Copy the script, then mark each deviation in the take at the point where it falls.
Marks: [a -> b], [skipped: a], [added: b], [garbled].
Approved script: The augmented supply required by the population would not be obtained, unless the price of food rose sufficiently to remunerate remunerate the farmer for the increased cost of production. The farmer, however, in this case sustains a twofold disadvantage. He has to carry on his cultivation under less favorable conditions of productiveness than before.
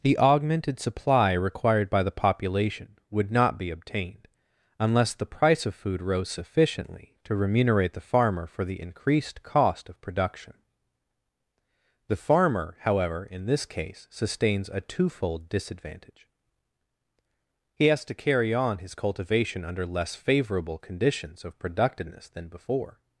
The augmented supply required by the population would not be obtained, unless the price of food rose sufficiently to remunerate [skipped: remunerate] the farmer for the increased cost of production. The farmer, however, in this case sustains a twofold disadvantage. He has to carry on his cultivation under less favorable conditions of productiveness than before.